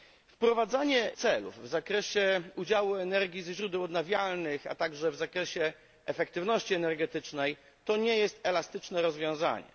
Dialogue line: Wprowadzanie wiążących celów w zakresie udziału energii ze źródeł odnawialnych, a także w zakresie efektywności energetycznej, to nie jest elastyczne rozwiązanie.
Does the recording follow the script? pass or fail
fail